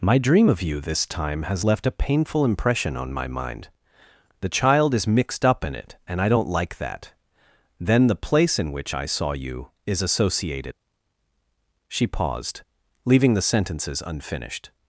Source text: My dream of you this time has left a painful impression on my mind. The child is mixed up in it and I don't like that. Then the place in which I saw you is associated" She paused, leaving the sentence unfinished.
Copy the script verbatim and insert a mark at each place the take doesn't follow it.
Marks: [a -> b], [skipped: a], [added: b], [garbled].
My dream of you this time has left a painful impression on my mind. The child is mixed up in it and I don't like that. Then the place in which I saw you is associated" She paused, leaving the [sentence -> sentences] unfinished.